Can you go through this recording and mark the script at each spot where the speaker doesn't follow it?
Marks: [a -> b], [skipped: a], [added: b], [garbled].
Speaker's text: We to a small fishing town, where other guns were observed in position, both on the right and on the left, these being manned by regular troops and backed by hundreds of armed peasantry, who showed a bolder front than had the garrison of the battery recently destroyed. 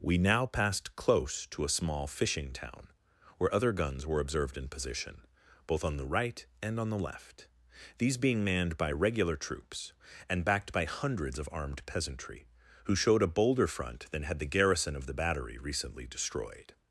We [added: now passed close] to a small fishing town, where other guns were observed in position, both on the right and on the left, these being manned by regular troops and backed by hundreds of armed peasantry, who showed a bolder front than had the garrison of the battery recently destroyed.